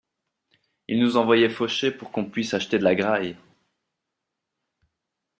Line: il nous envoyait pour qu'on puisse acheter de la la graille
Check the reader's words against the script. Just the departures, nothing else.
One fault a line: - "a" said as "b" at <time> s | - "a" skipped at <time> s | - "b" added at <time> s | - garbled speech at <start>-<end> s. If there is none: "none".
- "faucher" added at 1.5 s
- "la" skipped at 2.9 s